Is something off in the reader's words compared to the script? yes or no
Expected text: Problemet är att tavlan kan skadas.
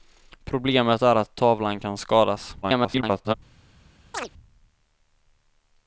yes